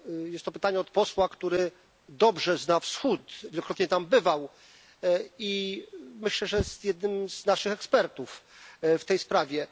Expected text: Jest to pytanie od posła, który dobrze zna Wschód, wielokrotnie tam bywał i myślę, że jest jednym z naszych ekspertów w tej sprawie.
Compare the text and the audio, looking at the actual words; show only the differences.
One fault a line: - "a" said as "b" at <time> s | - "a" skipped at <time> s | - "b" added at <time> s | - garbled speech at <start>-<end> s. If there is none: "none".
none